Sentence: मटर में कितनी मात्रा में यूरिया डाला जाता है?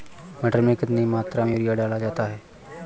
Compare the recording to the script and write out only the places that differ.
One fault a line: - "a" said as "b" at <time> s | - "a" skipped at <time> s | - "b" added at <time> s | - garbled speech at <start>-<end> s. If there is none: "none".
none